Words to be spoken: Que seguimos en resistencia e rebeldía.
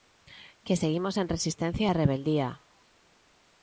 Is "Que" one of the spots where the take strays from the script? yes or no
no